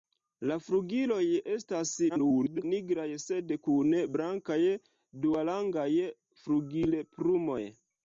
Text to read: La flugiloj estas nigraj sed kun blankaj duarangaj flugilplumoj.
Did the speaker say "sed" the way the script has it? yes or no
yes